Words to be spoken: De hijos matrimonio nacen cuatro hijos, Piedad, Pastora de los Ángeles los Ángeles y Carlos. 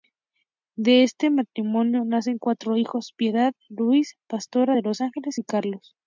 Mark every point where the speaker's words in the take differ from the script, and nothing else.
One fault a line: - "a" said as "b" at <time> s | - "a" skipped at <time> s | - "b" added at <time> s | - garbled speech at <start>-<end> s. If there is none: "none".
- "hijos" said as "este" at 1.0 s
- "Luis" added at 3.7 s
- "los Ángeles" skipped at 5.4 s